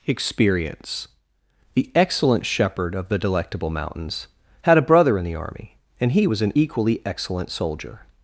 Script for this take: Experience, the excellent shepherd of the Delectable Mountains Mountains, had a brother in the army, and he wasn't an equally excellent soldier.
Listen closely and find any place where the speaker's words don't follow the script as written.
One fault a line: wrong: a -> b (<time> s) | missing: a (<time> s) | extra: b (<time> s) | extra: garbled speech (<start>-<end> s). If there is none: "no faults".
missing: Mountains (4.3 s)
wrong: wasn't -> was (6.2 s)